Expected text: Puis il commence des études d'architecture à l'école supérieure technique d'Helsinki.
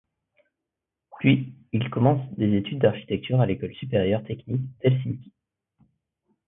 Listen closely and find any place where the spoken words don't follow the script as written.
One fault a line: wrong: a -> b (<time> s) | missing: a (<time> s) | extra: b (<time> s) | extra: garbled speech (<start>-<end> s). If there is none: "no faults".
no faults